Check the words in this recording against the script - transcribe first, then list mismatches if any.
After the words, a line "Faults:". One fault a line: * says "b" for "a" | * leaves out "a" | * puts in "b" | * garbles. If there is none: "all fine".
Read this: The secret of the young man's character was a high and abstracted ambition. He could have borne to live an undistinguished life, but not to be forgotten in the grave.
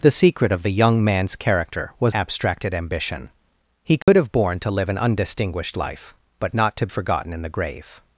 The secret of the young man's character was abstracted ambition. He could have borne to live an undistinguished life, but not to forgotten in the grave.
Faults:
* leaves out "a high and"
* leaves out "be"